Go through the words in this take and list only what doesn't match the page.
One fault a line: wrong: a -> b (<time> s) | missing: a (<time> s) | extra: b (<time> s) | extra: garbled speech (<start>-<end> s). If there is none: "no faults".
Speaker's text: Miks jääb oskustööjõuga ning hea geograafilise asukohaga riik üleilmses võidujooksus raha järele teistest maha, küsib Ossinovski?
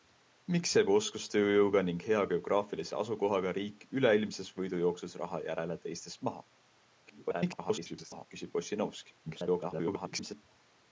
extra: garbled speech (7.1-8.3 s)
extra: garbled speech (9.3-10.4 s)